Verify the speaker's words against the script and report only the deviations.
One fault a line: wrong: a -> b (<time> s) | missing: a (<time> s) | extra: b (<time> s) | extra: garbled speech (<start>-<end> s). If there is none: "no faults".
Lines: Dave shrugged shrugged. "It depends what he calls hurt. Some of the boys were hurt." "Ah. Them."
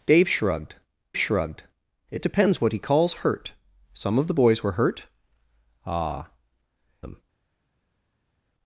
no faults